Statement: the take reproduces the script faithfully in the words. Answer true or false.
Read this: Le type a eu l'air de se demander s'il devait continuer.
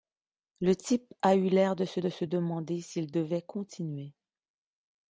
false